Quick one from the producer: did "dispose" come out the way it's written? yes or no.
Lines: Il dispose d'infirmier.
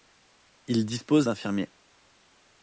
yes